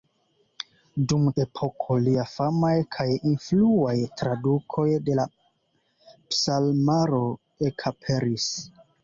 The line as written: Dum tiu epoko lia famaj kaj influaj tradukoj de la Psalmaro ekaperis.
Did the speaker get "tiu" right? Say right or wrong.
wrong